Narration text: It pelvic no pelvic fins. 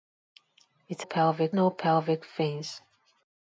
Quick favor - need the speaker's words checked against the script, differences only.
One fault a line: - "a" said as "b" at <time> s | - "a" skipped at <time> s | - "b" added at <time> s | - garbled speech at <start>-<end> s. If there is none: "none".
none